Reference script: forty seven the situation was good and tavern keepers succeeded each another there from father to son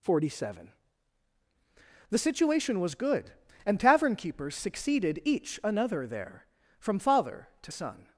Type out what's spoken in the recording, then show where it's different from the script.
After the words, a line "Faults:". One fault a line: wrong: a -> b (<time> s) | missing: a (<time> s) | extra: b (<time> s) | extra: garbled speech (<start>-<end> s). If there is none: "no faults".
forty seven the situation was good and tavern keepers succeeded each another there from father to son
Faults:
no faults